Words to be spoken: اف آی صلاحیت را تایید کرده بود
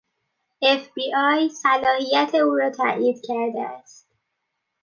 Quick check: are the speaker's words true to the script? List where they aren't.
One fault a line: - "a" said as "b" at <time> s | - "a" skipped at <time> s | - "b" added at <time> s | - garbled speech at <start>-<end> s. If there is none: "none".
- "بی" added at 0.9 s
- "او" added at 2.3 s
- "بود" said as "است" at 3.6 s